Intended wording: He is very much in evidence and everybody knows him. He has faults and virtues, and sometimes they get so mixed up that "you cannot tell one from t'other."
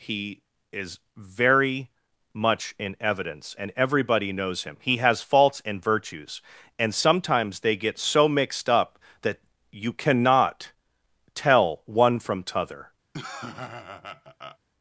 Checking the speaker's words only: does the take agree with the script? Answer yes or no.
yes